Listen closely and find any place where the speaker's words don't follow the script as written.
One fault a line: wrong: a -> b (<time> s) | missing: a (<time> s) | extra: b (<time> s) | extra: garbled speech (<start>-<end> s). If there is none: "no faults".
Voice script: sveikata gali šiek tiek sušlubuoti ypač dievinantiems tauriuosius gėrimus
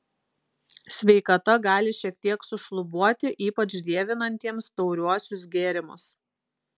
no faults